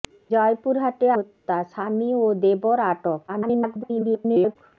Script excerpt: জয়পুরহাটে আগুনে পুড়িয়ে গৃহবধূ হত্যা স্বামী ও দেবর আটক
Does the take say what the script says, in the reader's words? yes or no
no